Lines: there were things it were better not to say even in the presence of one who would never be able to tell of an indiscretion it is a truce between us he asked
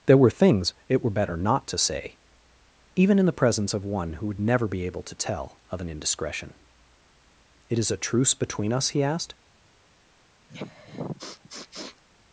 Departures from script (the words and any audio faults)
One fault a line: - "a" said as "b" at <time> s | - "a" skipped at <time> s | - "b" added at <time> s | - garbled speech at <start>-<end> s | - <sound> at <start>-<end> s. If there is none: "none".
- sniff at 10.5-12.0 s